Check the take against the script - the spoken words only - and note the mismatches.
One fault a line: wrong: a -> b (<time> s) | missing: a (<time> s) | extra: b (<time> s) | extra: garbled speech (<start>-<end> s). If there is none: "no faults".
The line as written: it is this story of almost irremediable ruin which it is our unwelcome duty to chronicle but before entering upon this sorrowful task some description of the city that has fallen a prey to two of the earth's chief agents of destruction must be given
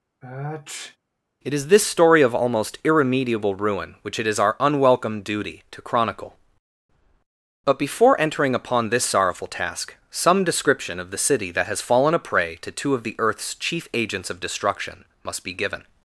no faults